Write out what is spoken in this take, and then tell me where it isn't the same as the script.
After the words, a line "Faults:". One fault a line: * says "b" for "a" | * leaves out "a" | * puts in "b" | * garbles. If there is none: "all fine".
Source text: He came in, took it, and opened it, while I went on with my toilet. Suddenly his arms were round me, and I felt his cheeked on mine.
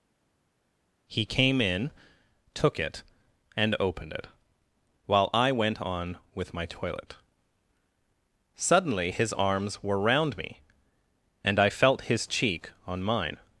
He came in, took it, and opened it, while I went on with my toilet. Suddenly his arms were round me, and I felt his cheek on mine.
Faults:
* says "cheek" for "cheeked"